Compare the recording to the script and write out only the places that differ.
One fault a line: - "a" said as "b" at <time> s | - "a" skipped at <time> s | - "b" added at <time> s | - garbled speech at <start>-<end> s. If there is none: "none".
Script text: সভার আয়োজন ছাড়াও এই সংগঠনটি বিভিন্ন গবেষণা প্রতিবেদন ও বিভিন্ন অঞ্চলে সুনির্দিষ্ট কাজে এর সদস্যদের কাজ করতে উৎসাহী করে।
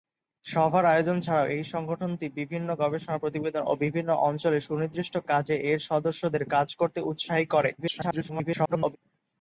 - garbled speech at 7.8-9.0 s